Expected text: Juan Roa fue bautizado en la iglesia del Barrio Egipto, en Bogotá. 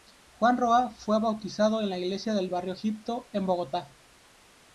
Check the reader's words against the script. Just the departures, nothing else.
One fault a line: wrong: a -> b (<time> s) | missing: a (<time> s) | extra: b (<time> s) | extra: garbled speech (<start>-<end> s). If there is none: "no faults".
no faults